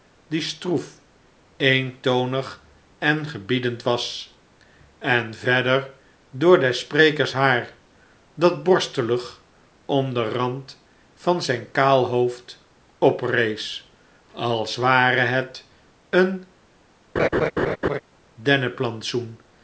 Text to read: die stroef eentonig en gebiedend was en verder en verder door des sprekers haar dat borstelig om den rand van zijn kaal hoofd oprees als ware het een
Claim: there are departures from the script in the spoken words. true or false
true